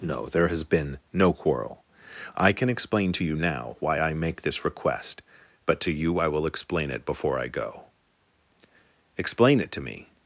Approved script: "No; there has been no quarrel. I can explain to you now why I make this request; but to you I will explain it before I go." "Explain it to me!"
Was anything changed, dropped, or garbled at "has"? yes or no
no